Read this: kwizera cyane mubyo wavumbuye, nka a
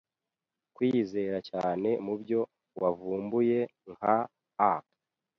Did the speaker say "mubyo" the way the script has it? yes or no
yes